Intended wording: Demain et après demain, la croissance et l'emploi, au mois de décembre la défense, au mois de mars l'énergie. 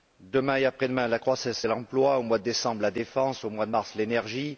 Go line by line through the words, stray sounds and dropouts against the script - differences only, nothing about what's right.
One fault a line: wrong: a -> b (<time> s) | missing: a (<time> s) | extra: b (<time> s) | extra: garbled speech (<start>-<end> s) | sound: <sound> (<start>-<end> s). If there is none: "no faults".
no faults